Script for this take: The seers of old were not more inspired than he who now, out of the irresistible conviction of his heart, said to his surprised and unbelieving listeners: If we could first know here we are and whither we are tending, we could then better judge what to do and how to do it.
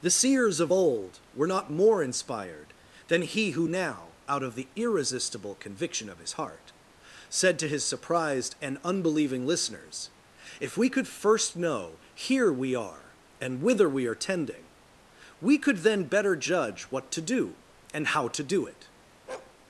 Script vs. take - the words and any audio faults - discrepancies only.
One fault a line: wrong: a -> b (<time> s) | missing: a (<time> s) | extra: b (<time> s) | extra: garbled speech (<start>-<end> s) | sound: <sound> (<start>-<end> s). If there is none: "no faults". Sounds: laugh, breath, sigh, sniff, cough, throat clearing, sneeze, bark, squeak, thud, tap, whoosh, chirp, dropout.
sound: bark (19.3-19.6 s)